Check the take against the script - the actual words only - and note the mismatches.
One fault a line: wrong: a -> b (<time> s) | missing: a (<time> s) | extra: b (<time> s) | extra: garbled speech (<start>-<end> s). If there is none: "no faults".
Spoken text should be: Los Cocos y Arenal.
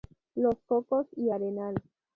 no faults